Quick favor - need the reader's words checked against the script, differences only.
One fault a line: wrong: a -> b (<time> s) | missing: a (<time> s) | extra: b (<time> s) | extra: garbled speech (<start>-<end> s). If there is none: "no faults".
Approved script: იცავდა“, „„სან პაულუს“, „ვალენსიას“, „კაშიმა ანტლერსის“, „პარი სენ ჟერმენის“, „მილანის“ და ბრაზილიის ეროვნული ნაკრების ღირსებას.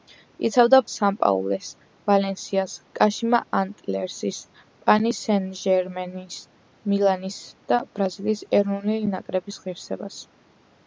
no faults